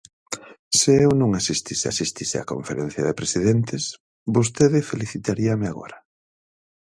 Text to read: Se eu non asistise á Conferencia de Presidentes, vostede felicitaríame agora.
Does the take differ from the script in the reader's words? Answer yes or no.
yes